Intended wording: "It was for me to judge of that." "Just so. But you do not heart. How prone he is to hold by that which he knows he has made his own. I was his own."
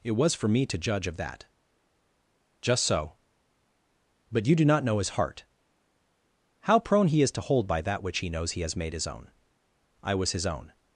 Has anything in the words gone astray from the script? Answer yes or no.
yes